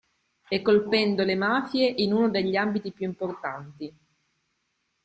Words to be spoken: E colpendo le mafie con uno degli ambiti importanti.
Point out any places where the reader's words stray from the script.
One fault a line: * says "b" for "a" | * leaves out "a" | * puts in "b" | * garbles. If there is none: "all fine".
* says "in" for "con"
* puts in "più"